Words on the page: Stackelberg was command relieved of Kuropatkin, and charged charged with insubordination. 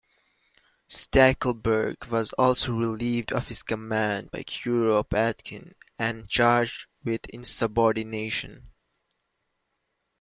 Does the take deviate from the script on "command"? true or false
true